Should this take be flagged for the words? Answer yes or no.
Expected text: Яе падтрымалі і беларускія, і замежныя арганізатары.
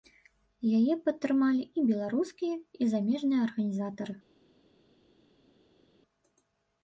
no